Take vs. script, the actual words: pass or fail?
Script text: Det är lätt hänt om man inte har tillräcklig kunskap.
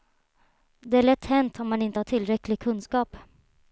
pass